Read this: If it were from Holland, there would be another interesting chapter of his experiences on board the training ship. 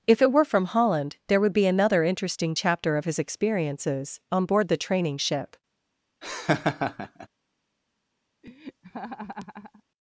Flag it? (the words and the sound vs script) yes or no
yes